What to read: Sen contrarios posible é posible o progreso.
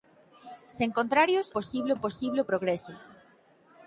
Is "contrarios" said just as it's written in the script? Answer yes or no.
yes